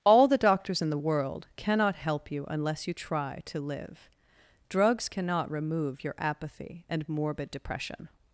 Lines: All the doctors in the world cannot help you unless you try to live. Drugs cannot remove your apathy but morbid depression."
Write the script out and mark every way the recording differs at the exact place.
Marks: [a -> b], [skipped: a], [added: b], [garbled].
All the doctors in the world cannot help you unless you try to live. Drugs cannot remove your apathy [but -> and] morbid depression."